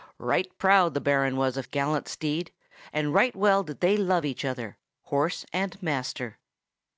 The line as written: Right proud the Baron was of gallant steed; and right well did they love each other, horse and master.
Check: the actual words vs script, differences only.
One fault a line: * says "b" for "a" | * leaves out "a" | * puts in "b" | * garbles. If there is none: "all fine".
all fine